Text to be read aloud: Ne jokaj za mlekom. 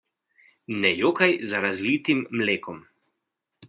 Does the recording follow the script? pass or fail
fail